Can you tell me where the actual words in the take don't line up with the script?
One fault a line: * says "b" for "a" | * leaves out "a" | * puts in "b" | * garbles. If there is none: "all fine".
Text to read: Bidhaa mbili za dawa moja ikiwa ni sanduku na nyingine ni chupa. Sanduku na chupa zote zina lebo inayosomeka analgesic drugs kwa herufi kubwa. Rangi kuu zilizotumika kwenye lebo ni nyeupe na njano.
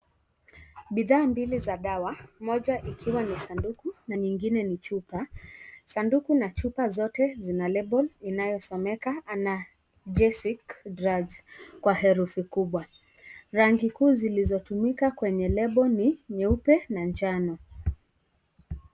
all fine